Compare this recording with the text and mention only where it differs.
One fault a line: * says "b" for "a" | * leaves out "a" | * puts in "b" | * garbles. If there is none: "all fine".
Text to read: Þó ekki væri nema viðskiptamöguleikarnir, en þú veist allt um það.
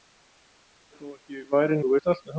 * leaves out "nema viðskiptamöguleikarnir en"